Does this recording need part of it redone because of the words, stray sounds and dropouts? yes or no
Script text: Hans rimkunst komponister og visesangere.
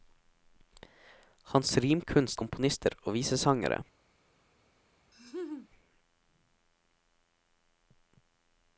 yes